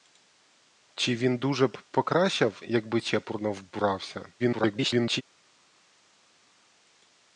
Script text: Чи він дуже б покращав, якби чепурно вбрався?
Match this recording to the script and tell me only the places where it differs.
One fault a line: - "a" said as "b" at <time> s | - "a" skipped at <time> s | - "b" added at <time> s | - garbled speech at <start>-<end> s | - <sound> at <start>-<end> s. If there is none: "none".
- garbled speech at 4.4-5.2 s